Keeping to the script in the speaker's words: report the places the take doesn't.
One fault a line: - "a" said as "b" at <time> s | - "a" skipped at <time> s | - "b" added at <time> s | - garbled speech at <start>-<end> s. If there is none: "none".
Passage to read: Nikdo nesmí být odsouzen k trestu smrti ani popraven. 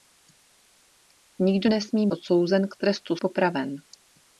- "být" skipped at 2.1 s
- "smrti ani" skipped at 3.2 s